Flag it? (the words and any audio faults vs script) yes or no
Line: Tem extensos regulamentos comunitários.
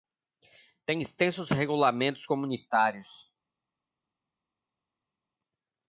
no